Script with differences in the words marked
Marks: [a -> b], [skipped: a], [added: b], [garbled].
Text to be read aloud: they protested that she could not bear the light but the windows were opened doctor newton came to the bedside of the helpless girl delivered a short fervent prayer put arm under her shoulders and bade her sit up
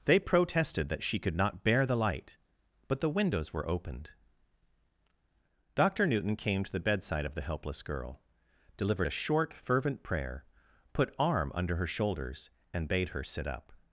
they protested that she could not bear the light but the windows were opened doctor newton came to the bedside of the helpless girl delivered a short fervent prayer put arm under her shoulders and bade her sit up